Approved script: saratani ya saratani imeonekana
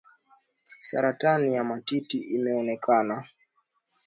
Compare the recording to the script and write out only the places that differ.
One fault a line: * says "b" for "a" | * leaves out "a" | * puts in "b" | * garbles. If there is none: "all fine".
* says "matiti" for "saratani"